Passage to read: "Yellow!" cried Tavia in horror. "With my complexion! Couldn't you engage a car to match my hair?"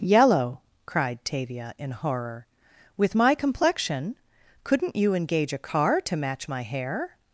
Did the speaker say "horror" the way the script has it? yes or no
yes